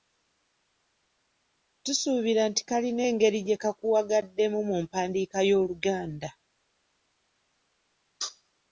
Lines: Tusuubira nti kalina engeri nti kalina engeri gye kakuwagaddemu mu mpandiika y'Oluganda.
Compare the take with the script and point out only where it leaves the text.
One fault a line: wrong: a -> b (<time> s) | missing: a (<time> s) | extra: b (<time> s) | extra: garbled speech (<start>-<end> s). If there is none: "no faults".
missing: nti kalina engeri (3.4 s)